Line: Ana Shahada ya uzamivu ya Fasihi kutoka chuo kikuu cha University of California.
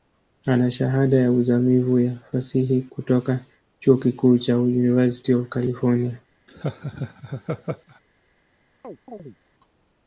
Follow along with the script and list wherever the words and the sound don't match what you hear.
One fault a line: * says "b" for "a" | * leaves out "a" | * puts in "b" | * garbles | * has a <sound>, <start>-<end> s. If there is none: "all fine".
* has a laugh, 6.5-8.0 s
* has a chirp, 8.8-9.4 s